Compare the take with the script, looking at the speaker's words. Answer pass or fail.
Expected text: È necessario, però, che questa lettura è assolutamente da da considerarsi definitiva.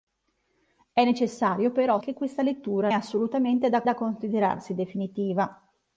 pass